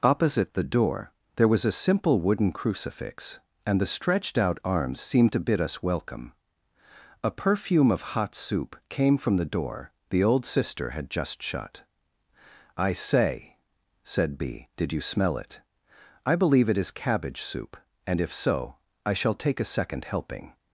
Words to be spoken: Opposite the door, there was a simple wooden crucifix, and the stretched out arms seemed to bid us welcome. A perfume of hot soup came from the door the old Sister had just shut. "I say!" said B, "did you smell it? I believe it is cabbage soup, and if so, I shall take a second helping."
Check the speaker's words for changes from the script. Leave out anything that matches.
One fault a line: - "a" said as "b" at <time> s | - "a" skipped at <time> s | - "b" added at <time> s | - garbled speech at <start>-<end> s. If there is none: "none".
none